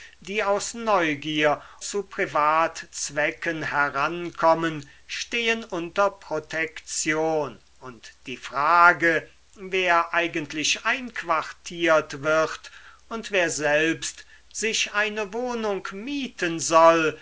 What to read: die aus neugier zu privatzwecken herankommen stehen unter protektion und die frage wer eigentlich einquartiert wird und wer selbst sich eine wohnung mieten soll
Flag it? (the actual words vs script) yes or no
no